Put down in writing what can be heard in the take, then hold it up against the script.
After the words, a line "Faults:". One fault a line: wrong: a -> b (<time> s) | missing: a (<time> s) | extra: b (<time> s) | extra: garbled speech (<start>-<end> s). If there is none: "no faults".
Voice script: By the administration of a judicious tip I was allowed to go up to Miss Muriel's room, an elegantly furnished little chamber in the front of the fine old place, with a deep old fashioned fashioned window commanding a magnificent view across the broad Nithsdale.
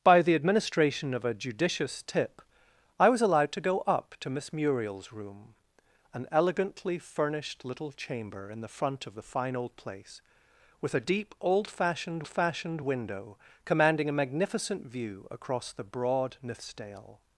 By the administration of a judicious tip I was allowed to go up to Miss Muriel's room, an elegantly furnished little chamber in the front of the fine old place, with a deep old fashioned fashioned window commanding a magnificent view across the broad Nithsdale.
Faults:
no faults